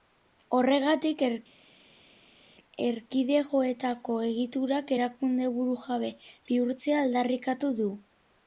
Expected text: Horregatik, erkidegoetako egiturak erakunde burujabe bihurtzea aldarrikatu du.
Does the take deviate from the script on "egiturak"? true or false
false